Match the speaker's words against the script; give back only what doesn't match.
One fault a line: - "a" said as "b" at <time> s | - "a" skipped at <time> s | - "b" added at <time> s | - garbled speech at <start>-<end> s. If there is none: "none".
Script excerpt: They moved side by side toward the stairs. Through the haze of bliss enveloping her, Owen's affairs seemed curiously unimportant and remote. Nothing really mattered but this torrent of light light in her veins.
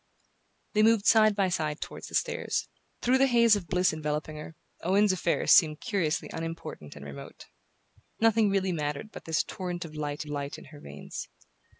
none